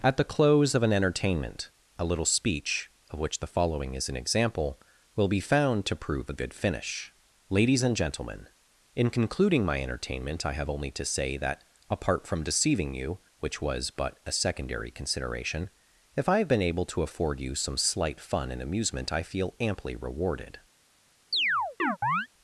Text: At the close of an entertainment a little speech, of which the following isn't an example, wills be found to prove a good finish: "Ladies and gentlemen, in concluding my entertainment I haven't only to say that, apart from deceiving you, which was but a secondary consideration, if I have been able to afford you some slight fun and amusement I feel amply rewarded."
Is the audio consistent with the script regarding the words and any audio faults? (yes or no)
no